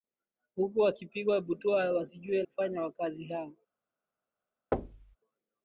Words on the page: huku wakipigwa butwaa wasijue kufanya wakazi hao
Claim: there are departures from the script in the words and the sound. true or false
true